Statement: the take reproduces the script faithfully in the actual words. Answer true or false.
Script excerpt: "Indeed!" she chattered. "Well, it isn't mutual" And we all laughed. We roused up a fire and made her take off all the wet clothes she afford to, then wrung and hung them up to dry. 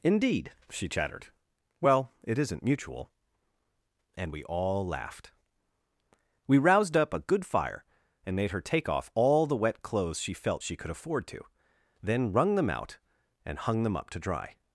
false